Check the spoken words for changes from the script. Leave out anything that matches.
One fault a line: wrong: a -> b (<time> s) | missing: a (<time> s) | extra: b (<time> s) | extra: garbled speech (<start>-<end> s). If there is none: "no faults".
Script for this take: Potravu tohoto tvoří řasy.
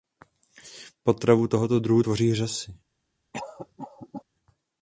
extra: druhu (1.8 s)